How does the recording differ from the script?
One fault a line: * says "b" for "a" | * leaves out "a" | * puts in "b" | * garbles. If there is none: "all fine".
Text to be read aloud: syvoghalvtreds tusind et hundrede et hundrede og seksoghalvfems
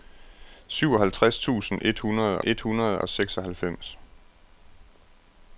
all fine